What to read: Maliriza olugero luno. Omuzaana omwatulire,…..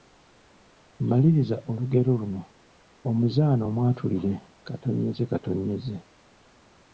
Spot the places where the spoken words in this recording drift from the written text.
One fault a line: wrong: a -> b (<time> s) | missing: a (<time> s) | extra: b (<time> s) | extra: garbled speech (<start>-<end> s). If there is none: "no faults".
no faults